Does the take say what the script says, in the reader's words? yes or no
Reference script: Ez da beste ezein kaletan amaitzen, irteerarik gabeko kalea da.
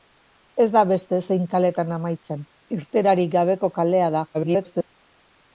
no